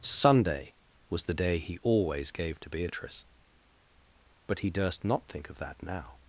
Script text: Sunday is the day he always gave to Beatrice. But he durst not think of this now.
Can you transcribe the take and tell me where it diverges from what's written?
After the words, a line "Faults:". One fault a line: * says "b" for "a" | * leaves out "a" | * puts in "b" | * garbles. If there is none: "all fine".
Sunday was the day he always gave to Beatrice. But he durst not think of that now.
Faults:
* says "was" for "is"
* says "that" for "this"